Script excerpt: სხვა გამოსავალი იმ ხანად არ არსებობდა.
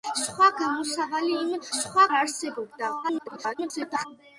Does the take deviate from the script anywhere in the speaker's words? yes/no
yes